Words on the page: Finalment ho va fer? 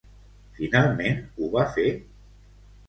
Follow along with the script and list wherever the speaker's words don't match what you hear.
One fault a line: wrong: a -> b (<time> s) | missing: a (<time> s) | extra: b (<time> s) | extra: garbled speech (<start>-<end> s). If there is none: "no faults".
no faults